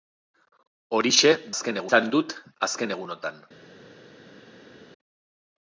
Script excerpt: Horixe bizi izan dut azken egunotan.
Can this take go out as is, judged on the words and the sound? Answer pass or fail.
fail